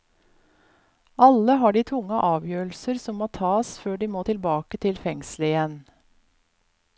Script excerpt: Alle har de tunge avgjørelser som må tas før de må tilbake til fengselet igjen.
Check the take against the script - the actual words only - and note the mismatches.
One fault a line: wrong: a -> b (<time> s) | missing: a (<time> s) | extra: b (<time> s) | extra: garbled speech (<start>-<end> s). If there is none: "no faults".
no faults